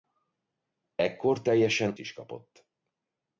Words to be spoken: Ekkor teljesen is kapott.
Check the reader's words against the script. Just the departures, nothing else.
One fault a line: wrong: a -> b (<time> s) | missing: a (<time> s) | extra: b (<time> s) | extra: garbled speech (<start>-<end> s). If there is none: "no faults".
no faults